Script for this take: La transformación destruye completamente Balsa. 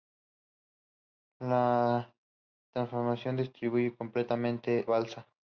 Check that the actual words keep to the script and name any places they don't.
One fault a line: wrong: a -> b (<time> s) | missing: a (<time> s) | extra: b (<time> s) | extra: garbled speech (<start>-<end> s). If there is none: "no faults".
no faults